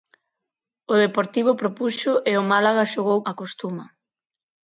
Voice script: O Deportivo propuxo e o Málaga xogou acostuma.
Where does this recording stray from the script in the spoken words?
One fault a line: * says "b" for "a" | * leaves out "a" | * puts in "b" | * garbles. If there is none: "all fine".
all fine